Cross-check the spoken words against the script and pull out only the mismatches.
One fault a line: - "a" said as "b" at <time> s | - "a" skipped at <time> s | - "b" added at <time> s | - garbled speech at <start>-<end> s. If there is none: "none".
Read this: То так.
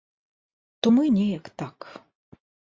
- "мы неяк" added at 0.9 s